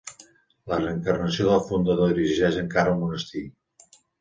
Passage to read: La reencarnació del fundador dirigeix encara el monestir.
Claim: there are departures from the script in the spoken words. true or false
false